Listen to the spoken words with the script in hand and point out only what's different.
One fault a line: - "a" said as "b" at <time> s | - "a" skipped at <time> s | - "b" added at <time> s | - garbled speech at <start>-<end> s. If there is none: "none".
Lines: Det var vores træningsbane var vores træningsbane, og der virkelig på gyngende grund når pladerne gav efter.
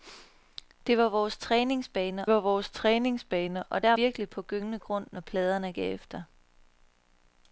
none